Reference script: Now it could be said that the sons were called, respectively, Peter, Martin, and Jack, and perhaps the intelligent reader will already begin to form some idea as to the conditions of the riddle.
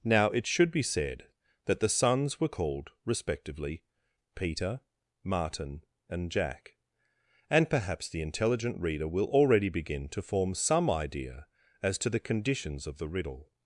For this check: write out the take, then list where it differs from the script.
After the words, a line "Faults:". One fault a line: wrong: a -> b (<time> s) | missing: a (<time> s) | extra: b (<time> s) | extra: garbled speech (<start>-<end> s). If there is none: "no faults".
Now it should be said that the sons were called, respectively, Peter, Martin, and Jack, and perhaps the intelligent reader will already begin to form some idea as to the conditions of the riddle.
Faults:
wrong: could -> should (0.5 s)